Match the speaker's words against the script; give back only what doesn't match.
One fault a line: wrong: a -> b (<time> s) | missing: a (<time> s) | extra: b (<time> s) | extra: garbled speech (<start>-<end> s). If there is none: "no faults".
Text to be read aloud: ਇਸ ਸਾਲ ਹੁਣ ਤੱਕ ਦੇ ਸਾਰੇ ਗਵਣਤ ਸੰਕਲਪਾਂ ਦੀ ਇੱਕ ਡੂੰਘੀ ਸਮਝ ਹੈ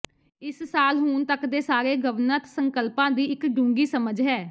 no faults